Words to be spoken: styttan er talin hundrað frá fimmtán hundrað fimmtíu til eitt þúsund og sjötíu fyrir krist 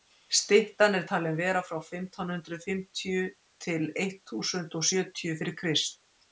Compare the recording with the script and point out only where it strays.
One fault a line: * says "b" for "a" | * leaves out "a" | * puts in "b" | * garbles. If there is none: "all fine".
* says "vera" for "hundrað"